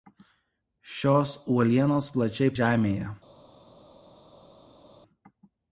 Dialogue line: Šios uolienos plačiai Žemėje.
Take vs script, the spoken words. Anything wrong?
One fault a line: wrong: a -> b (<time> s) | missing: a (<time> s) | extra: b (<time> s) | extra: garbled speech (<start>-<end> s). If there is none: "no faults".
no faults